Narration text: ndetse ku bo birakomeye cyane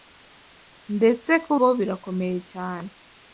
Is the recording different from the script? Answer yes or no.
no